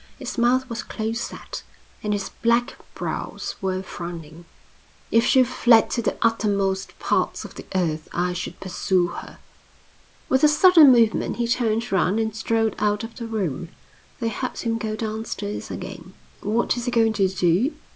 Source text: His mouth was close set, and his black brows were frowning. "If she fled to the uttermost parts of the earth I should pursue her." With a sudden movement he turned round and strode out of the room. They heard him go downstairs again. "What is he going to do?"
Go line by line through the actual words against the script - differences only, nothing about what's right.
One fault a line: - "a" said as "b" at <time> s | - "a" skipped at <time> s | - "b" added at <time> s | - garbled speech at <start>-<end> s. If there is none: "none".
none